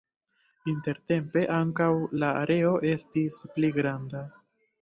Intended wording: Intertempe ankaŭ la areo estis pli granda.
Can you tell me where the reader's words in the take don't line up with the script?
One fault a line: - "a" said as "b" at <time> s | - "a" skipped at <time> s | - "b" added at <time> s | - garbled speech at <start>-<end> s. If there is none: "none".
none